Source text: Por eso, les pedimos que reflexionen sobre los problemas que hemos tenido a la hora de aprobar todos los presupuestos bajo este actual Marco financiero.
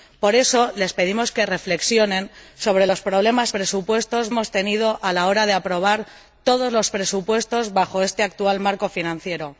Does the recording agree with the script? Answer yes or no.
no